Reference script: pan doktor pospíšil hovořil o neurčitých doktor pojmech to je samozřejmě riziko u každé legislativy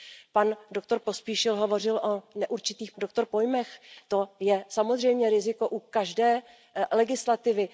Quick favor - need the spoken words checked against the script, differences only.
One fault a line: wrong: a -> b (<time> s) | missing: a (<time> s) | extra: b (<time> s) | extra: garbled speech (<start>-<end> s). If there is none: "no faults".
no faults